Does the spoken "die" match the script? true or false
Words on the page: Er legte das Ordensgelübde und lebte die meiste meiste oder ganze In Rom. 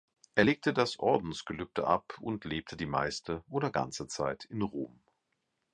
true